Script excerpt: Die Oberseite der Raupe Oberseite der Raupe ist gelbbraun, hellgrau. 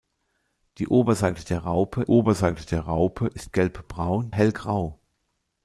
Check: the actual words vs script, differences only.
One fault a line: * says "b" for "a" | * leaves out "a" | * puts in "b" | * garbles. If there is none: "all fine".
all fine